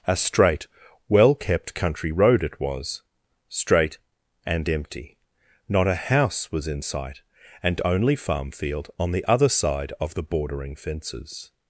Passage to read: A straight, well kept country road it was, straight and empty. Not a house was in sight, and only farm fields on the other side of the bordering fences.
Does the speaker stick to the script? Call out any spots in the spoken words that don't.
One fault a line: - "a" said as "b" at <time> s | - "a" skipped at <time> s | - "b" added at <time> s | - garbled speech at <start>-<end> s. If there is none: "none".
- "fields" said as "field" at 8.5 s